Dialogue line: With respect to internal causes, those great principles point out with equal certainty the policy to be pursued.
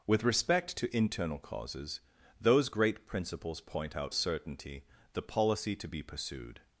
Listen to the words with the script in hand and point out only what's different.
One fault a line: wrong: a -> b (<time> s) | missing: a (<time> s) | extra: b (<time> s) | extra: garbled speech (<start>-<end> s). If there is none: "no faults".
missing: with equal (4.1 s)